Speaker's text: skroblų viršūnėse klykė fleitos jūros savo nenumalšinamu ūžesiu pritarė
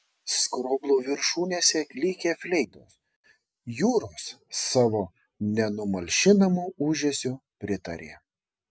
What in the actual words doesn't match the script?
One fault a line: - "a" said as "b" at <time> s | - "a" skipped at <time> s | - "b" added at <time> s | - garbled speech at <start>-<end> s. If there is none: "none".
none